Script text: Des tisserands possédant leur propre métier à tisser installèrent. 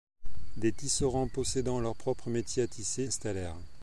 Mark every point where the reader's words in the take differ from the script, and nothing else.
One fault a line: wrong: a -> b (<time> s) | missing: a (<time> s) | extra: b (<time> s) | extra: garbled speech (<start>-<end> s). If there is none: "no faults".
no faults